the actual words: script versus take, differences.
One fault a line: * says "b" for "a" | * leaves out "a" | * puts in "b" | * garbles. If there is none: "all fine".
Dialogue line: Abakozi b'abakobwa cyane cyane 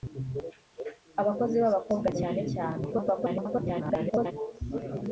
* garbles